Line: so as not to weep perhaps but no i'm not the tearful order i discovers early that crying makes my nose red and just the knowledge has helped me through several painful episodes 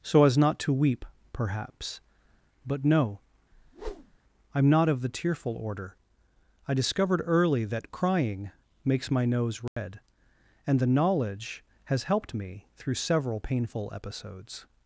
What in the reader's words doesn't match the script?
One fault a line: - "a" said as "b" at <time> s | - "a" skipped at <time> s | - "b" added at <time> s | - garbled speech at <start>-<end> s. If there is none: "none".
- "of" added at 4.9 s
- "discovers" said as "discovered" at 6.7 s
- "just" skipped at 10.8 s